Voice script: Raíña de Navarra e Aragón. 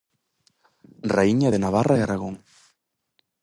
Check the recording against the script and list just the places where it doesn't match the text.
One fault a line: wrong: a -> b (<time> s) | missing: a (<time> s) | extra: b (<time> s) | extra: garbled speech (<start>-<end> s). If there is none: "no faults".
no faults